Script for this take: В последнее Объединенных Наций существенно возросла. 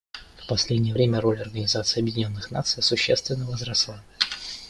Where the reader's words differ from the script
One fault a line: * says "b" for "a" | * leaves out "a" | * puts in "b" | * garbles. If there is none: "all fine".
* puts in "время роль Организации"